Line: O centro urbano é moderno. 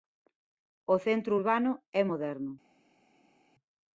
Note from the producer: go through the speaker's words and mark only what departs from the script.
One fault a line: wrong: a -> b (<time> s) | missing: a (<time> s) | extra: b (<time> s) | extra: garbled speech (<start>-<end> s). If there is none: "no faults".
no faults